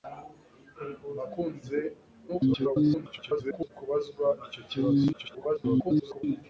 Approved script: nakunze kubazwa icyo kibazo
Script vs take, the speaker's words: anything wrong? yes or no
yes